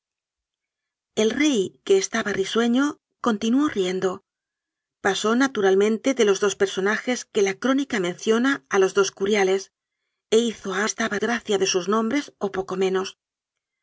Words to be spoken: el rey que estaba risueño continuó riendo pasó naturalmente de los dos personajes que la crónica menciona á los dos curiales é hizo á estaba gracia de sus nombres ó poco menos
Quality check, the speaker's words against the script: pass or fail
pass